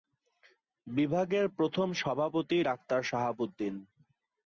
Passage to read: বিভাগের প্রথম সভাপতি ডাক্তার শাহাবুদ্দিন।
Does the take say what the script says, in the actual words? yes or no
yes